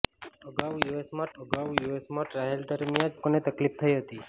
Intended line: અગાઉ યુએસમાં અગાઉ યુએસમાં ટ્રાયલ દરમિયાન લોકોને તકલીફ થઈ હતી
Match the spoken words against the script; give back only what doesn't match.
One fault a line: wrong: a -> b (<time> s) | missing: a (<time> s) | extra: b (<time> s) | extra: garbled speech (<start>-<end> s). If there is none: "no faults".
no faults